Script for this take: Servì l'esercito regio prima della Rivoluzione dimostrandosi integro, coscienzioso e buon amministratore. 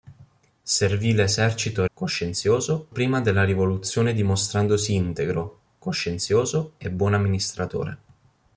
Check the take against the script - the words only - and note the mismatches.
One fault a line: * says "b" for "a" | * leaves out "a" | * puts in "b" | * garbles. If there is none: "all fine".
* says "coscienzioso" for "regio"